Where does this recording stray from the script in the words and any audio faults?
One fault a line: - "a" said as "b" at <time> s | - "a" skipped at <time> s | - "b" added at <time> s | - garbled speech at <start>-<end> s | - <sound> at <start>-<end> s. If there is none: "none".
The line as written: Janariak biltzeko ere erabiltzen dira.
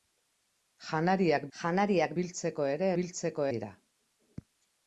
- "janariak" added at 1.6 s
- "erabiltzen" said as "biltzeko" at 3.0 s